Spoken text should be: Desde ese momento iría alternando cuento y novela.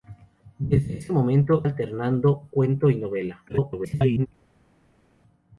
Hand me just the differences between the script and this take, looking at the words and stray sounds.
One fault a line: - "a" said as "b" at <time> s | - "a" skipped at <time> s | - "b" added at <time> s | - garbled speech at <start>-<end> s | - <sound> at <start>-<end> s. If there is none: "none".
- "iría" skipped at 1.6 s
- garbled speech at 3.5-4.3 s